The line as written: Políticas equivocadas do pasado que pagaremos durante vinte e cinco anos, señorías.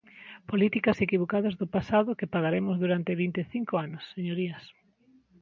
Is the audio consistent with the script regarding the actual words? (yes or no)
yes